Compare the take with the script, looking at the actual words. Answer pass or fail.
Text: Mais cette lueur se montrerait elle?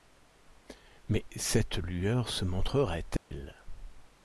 pass